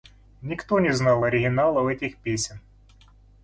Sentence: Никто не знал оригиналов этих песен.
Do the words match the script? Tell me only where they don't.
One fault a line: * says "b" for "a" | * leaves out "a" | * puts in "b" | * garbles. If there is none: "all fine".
all fine